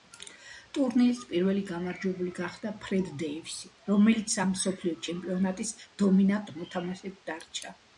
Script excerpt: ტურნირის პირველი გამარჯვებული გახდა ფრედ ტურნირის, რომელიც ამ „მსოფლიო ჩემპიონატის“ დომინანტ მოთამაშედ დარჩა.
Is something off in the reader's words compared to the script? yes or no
yes